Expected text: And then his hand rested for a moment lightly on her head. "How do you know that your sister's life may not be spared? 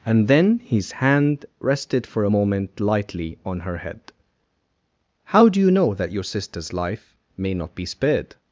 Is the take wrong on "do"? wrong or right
right